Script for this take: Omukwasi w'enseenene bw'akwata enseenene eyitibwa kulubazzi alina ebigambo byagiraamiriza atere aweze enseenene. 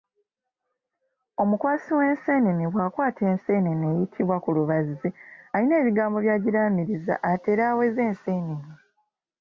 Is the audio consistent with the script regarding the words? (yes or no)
yes